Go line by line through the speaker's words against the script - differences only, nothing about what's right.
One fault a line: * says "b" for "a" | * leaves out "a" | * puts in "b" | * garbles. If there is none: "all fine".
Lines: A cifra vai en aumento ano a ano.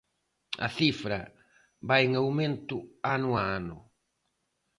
all fine